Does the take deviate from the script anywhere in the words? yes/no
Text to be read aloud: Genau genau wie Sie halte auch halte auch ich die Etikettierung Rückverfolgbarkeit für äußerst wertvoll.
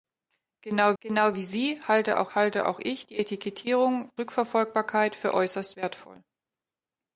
no